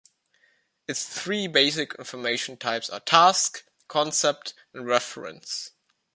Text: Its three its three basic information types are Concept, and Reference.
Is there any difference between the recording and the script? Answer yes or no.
yes